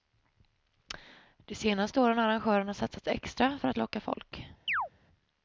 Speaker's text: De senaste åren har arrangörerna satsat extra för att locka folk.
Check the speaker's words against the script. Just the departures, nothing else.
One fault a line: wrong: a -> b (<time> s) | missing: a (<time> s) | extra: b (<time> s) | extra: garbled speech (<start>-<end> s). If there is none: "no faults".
no faults